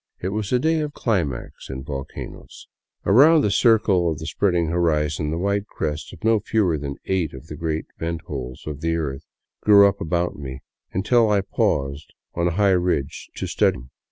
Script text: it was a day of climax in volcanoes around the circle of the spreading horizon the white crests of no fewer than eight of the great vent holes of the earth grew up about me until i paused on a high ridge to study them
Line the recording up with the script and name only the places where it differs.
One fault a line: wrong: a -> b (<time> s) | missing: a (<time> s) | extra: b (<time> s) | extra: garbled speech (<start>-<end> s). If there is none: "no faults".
no faults